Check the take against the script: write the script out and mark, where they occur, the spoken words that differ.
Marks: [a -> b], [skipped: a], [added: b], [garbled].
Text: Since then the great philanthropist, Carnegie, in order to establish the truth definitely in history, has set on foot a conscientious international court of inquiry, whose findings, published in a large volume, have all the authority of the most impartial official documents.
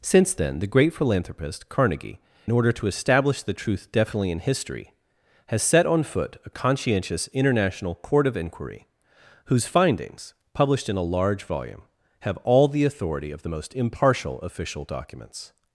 Since then the great philanthropist, Carnegie, [skipped: in] order to establish the truth definitely in history, has set on foot a conscientious international court of inquiry, whose findings, published in a large volume, have all the authority of the most impartial official documents.